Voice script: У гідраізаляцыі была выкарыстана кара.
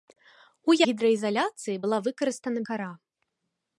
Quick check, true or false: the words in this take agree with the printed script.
true